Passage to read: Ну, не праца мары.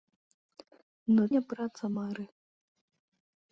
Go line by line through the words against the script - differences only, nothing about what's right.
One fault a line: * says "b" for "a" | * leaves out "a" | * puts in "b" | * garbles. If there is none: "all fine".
all fine